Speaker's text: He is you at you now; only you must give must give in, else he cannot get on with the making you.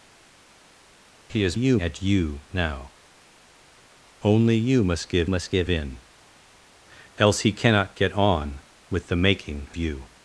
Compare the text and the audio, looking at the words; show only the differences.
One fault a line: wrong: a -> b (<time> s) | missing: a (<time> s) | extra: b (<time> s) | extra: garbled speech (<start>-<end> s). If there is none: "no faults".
no faults